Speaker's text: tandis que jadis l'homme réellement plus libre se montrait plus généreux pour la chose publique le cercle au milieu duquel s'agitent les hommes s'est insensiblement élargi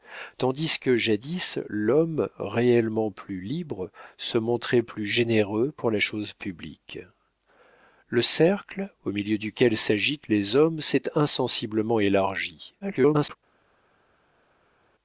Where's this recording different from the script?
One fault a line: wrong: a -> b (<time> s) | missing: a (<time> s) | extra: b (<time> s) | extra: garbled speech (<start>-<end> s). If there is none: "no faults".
extra: garbled speech (12.8-13.4 s)